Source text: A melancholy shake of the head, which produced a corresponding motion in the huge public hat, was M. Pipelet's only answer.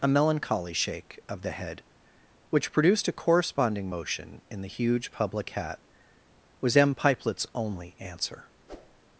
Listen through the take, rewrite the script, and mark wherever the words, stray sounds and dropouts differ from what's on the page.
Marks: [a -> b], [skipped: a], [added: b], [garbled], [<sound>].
A melancholy shake of the head, which produced a corresponding motion in the huge public hat, was M. Pipelet's only answer. [whoosh]